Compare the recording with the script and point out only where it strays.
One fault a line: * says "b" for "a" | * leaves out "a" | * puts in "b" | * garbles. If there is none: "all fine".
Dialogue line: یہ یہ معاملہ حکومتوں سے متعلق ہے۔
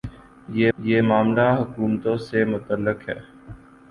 all fine